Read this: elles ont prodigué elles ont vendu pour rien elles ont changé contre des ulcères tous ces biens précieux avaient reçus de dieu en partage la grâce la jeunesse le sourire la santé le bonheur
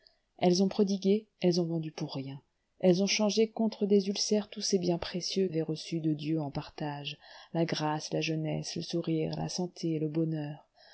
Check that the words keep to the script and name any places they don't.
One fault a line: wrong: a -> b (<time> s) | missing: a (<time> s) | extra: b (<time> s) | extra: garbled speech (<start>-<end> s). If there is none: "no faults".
no faults